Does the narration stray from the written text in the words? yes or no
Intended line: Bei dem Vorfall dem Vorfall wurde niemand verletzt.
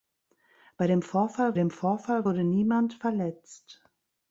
no